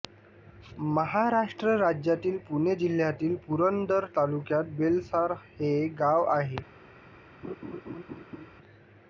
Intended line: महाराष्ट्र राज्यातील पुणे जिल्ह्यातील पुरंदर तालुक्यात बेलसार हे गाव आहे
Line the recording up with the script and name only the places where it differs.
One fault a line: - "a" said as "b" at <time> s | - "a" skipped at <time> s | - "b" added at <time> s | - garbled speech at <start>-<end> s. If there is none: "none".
none